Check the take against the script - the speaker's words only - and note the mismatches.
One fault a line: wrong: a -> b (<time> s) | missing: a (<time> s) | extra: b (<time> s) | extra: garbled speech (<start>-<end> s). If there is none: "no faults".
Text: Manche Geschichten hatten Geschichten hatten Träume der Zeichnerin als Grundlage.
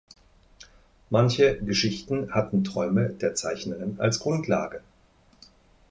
missing: Geschichten hatten (2.6 s)